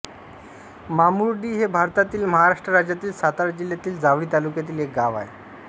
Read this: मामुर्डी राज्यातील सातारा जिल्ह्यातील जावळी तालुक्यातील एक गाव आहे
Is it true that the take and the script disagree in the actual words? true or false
true